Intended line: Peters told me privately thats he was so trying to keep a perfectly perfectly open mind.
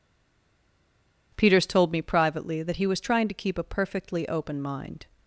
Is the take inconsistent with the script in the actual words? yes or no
yes